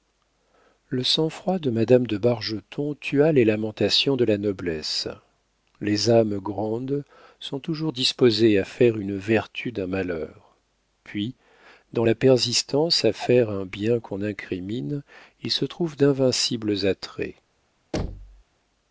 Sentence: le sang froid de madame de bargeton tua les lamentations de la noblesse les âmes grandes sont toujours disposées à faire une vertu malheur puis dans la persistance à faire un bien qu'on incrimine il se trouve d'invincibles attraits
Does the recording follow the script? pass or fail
fail